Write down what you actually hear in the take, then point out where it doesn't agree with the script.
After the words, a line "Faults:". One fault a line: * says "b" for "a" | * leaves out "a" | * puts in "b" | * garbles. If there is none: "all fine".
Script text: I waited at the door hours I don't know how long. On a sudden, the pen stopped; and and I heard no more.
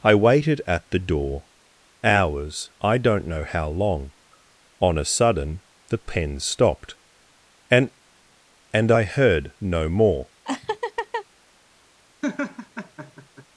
I waited at the door hours I don't know how long. On a sudden, the pen stopped; and and I heard no more.
Faults:
all fine